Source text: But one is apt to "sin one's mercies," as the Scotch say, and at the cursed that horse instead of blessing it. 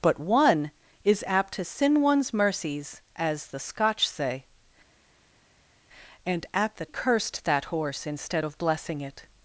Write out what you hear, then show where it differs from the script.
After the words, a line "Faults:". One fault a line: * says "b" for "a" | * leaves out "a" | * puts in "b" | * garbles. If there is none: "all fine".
But one is apt to "sin one's mercies," as the Scotch say, and at the cursed that horse instead of blessing it.
Faults:
all fine